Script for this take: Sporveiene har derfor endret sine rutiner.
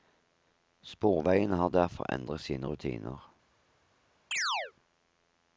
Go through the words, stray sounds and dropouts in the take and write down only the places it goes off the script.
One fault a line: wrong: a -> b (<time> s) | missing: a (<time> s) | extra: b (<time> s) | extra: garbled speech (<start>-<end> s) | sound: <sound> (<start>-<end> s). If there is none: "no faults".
sound: chirp (4.3-4.7 s)